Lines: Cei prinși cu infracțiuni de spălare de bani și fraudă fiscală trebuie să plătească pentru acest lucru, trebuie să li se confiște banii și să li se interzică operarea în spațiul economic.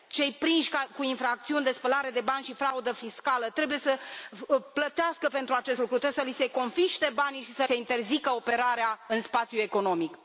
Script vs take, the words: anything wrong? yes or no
yes